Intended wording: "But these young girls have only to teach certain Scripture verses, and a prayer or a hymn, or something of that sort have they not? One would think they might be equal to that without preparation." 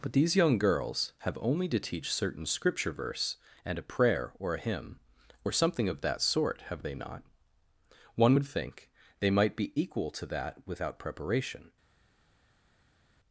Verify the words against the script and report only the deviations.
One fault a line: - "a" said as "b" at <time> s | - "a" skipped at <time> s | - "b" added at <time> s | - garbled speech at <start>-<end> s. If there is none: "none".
- "verses" said as "verse" at 2.9 s